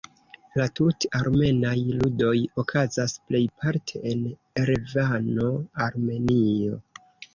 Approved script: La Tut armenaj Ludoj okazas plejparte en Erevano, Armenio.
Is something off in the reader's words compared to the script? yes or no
no